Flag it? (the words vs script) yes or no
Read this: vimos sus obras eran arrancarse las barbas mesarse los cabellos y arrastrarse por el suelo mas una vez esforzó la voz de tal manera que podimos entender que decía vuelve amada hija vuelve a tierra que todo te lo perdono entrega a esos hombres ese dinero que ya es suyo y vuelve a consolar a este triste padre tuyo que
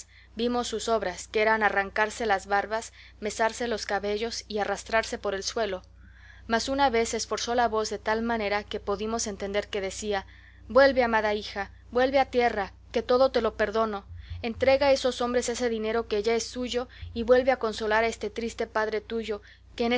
yes